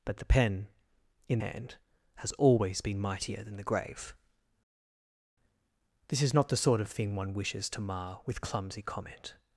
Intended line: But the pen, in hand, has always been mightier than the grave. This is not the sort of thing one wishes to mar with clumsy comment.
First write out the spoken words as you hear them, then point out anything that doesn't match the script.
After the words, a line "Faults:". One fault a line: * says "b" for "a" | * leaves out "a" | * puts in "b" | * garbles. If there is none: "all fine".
But the pen, in hand, has always been mightier than the grave. This is not the sort of thing one wishes to mar with clumsy comment.
Faults:
all fine